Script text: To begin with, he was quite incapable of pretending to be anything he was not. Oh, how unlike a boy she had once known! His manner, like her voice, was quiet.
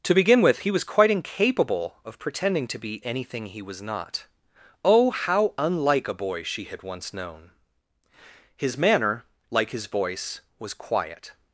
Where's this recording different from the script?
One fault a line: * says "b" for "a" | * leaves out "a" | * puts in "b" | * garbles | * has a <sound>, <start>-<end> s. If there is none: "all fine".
* says "his" for "her"